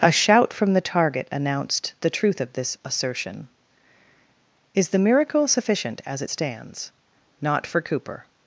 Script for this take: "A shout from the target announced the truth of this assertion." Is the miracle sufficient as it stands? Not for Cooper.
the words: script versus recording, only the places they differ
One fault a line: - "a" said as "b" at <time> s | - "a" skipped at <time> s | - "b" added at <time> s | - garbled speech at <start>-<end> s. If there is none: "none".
none